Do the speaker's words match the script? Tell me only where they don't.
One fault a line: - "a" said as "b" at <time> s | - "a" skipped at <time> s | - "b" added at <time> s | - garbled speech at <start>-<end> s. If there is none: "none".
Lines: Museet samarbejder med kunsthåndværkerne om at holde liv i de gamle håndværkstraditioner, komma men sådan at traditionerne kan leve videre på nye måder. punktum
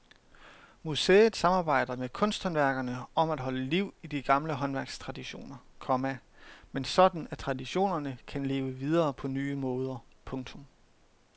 none